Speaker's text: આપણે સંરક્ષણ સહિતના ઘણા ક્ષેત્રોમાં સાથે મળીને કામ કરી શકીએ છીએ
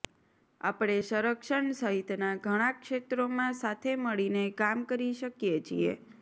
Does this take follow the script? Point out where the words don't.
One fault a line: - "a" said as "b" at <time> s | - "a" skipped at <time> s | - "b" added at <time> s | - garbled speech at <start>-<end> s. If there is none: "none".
none